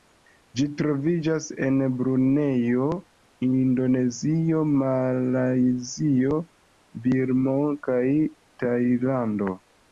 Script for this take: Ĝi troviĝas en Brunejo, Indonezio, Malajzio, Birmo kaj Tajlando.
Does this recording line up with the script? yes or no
yes